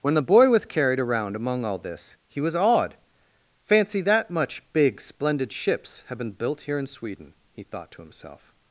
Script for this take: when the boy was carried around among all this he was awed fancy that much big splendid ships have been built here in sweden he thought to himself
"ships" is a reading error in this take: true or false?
false